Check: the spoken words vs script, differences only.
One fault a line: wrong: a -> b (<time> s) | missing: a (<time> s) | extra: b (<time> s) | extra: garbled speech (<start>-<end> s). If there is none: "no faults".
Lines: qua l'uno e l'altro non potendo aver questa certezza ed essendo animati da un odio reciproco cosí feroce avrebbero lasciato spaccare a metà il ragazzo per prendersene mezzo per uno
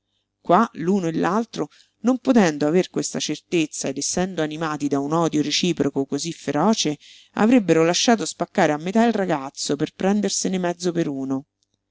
no faults